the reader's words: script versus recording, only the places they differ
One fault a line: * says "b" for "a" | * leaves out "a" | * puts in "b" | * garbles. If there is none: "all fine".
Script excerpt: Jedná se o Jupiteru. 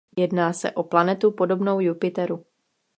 * puts in "planetu podobnou"